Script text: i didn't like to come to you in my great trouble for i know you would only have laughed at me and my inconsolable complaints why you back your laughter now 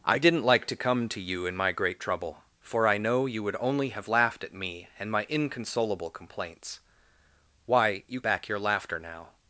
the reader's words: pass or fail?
pass